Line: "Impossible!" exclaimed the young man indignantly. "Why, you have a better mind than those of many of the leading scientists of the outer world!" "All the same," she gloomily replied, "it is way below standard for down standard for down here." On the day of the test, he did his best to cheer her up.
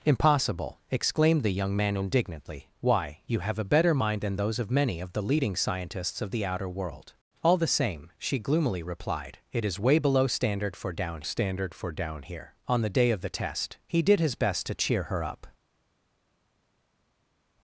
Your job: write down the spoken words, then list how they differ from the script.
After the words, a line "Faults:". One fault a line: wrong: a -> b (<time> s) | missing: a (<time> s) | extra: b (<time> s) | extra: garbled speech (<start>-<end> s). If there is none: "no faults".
"Impossible!" exclaimed the young man indignantly. "Why, you have a better mind than those of many of the leading scientists of the outer world!" "All the same," she gloomily replied, "it is way below standard for down standard for down here." On the day of the test, he did his best to cheer her up.
Faults:
no faults